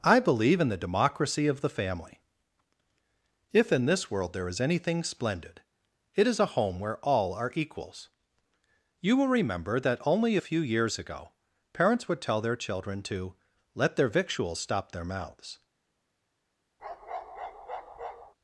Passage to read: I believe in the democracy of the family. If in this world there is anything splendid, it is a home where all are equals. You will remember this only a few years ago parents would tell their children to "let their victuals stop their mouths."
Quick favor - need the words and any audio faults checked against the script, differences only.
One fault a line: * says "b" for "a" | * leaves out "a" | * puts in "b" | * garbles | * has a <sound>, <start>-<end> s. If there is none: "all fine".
* says "that" for "this"
* has a bark, 16.8-18.3 s